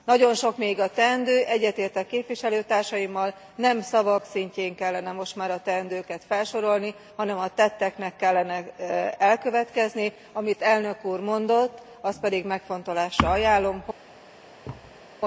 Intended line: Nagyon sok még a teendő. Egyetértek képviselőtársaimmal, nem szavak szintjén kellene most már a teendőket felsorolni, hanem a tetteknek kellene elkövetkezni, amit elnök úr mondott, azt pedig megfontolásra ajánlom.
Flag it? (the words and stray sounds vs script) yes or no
yes